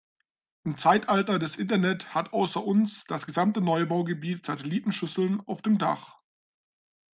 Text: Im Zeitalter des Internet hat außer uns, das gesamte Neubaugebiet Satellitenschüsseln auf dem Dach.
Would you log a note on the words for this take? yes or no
no